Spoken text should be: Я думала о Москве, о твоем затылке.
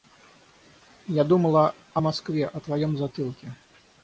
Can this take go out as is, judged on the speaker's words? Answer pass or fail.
pass